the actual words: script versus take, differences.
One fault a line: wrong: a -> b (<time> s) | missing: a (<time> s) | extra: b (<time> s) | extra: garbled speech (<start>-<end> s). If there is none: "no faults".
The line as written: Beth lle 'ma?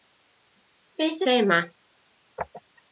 no faults